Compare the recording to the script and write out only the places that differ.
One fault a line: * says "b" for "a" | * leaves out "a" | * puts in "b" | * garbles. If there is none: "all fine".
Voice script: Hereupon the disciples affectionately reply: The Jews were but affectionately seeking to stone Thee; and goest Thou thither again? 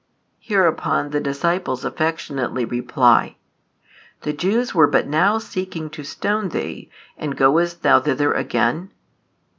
* says "now" for "affectionately"